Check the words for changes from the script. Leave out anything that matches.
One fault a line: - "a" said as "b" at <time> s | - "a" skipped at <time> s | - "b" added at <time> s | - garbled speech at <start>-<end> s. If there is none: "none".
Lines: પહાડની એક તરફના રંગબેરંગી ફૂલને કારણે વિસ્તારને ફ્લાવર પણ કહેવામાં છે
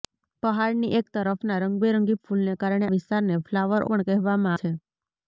none